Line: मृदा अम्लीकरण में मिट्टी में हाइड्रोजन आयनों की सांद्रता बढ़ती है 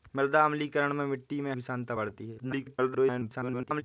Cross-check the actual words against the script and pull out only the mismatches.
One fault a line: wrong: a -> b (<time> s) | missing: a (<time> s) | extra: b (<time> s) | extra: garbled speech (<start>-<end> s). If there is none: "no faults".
missing: हाइड्रोजन आयनों (1.5 s)
extra: garbled speech (2.4-3.8 s)